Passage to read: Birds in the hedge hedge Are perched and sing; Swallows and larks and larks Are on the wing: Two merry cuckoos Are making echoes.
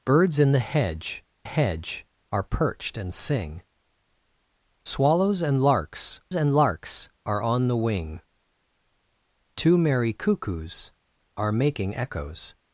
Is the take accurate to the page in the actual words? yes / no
yes